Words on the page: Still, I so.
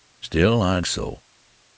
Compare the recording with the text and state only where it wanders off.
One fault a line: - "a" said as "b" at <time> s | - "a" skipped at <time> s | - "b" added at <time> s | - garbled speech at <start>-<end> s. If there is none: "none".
none